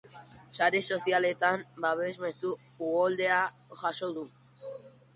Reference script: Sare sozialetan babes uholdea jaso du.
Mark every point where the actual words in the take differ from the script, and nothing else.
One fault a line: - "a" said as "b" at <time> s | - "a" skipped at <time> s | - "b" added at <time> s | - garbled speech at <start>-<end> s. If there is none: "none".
- "mezu" added at 2.2 s